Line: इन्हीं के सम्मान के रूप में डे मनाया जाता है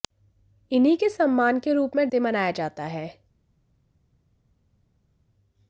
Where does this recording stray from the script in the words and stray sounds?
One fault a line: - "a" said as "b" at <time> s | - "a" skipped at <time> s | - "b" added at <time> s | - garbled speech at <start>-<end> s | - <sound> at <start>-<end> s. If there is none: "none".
none